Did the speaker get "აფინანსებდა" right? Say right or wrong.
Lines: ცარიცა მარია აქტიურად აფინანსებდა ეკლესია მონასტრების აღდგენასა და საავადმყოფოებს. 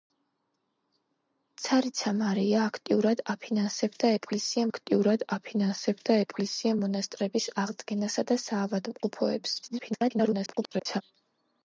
right